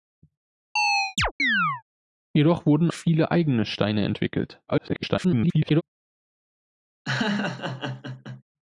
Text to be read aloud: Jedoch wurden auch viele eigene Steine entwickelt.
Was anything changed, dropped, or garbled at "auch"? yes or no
yes